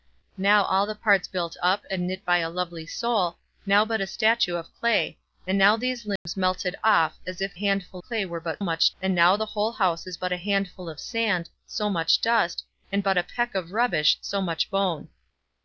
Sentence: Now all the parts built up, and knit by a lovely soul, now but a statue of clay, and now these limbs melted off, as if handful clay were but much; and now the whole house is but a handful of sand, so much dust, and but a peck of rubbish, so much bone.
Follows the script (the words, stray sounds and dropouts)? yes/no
no